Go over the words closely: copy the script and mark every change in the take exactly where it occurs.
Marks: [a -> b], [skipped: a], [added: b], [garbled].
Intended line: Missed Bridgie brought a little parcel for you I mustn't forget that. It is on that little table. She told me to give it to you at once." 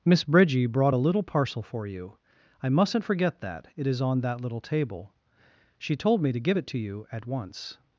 [Missed -> Miss] Bridgie brought a little parcel for you I mustn't forget that. It is on that little table. She told me to give it to you at once."